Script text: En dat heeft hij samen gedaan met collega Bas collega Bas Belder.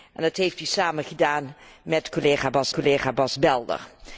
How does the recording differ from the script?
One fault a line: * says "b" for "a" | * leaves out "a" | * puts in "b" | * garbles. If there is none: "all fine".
all fine